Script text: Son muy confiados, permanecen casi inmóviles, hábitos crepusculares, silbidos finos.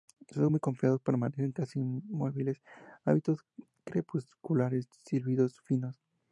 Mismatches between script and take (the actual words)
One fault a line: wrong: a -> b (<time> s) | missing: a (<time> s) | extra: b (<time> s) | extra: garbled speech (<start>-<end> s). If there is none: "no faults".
no faults